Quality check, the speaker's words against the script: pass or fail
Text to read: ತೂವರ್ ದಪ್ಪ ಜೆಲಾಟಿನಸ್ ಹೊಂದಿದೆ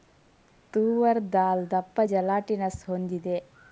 fail